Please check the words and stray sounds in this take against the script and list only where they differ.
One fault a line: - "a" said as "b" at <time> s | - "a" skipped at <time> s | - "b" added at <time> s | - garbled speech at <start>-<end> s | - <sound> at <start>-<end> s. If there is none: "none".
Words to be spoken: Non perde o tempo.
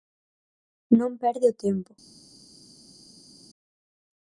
none